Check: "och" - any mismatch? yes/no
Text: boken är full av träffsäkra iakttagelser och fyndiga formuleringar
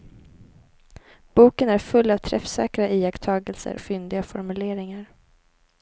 yes